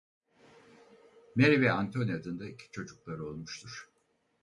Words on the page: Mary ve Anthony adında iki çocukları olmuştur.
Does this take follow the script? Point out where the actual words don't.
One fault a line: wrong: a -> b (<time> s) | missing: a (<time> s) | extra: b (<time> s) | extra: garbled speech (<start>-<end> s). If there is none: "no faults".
no faults